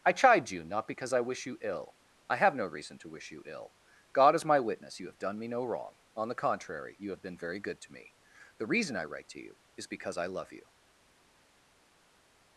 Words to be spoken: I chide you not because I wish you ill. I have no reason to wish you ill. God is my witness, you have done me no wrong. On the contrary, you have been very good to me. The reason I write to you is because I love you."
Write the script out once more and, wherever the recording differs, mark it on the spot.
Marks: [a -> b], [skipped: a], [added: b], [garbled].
I chide you not because I wish you ill. I have no reason to wish you ill. God is my witness, you have done me no wrong. On the contrary, you have been very good to me. The reason I write to you is because I love you."